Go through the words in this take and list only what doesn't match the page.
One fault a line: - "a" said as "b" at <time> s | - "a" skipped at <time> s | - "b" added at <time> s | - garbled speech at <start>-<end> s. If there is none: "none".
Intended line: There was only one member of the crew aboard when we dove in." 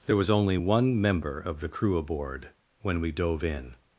none